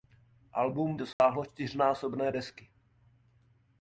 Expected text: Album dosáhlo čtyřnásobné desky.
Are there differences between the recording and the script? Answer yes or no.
no